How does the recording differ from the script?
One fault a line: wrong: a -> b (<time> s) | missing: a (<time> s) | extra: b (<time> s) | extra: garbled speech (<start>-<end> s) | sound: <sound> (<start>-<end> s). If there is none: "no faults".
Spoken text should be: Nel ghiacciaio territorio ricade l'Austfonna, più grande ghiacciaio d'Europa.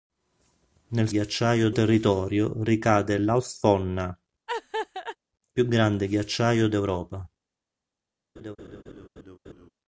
sound: laugh (4.5-5.2 s)
sound: laugh (8.4-9.7 s)